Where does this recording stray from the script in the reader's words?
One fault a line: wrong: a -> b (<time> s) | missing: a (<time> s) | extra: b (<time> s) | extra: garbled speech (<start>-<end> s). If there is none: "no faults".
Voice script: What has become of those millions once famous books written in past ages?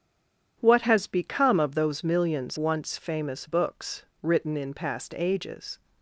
no faults